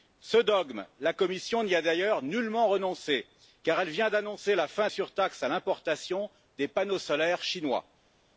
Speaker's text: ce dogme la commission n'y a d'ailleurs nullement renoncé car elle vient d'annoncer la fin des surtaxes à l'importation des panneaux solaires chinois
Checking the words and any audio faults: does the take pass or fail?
fail